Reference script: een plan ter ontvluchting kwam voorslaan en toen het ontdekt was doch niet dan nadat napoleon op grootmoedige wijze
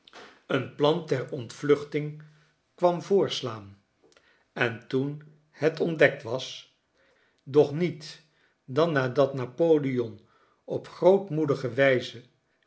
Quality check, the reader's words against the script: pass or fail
pass